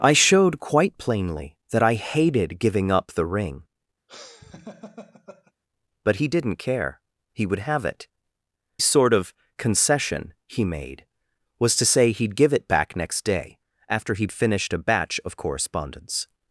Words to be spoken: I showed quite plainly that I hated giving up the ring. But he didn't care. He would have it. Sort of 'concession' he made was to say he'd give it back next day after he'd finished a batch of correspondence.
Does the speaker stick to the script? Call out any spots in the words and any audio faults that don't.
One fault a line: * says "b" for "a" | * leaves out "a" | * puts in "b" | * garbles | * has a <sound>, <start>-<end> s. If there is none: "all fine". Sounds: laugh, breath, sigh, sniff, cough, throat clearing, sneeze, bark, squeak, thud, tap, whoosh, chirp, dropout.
* has a laugh, 4.1-5.5 s